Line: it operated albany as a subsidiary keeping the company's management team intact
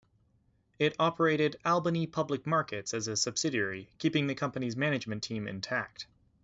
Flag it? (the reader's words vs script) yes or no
yes